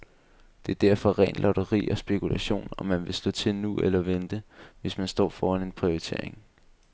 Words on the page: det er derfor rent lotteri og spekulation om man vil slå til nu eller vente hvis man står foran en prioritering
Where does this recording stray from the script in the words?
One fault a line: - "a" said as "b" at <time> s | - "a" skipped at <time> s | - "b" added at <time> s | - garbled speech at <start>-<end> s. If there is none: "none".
none